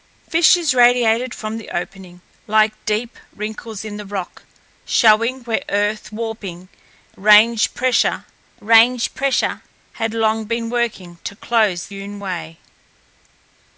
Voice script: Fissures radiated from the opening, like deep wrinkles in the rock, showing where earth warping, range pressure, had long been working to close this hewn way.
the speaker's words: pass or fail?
fail